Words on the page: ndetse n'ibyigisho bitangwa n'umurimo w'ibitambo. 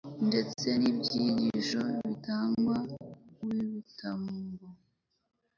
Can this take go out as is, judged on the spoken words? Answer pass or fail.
fail